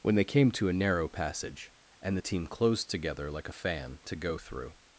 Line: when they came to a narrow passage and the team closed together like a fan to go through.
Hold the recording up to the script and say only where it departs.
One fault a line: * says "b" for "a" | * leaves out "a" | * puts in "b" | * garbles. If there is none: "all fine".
all fine